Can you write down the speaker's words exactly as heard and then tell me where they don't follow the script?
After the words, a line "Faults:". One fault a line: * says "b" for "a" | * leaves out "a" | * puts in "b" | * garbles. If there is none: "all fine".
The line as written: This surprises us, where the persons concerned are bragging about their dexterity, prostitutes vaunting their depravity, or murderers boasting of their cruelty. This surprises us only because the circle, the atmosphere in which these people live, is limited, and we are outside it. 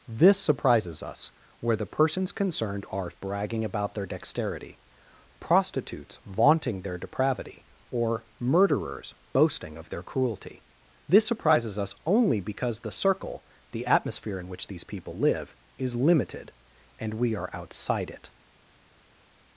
This surprises us, where the persons concerned are bragging about their dexterity, prostitutes vaunting their depravity, or murderers boasting of their cruelty. This surprises us only because the circle, the atmosphere in which these people live, is limited, and we are outside it.
Faults:
all fine